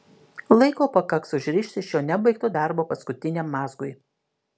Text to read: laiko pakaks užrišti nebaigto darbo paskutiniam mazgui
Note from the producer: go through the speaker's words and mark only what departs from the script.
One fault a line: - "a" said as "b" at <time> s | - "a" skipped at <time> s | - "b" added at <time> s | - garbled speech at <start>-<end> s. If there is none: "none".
- "šio" added at 1.9 s